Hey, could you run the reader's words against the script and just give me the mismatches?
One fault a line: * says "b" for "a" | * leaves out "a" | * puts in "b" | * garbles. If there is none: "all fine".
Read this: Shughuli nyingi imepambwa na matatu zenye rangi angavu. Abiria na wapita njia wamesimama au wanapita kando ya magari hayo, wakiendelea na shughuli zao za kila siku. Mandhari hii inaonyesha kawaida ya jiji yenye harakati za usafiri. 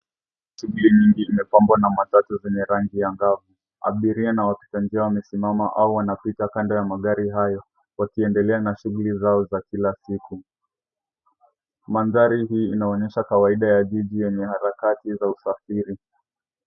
all fine